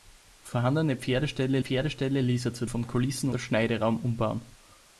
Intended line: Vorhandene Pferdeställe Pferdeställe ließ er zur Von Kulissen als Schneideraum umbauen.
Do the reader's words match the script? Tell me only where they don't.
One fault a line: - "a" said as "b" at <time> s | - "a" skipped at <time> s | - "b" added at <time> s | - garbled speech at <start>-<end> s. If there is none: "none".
none